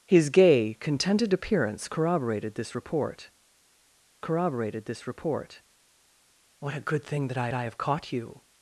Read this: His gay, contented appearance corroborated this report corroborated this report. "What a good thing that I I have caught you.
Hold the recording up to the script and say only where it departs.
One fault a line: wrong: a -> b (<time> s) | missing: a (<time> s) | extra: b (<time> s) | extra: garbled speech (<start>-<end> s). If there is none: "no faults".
no faults